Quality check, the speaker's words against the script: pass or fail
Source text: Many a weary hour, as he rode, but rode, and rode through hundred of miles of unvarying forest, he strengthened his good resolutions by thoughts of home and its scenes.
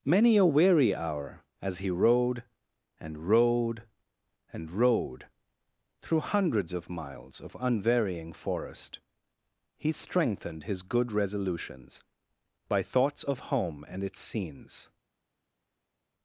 fail